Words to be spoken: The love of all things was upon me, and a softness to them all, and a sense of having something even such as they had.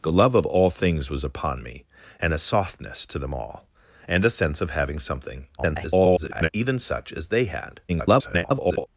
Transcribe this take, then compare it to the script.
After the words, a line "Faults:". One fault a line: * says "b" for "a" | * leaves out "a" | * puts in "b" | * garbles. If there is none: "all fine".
The love of all things was upon me, and a softness to them all, and a sense of having something [garbled] even such as they had. [garbled]
Faults:
* garbles
* garbles